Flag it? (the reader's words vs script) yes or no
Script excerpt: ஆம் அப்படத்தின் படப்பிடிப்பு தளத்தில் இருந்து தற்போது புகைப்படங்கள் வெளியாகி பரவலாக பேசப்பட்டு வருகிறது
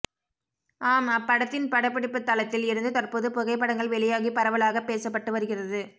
no